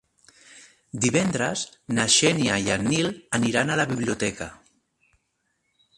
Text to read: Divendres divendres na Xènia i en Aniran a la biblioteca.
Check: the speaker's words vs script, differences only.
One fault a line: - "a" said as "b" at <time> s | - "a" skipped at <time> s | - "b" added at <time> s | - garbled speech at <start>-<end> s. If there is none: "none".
- "divendres" skipped at 1.6 s
- "Nil" added at 3.0 s